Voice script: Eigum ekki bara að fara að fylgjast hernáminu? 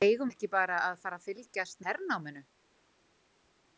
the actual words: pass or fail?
pass